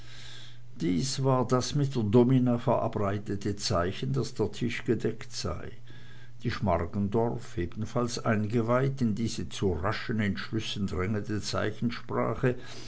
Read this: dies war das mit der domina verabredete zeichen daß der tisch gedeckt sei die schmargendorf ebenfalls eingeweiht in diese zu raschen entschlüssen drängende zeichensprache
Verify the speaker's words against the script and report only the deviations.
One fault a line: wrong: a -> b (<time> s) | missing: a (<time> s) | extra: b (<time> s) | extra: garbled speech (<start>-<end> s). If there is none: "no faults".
no faults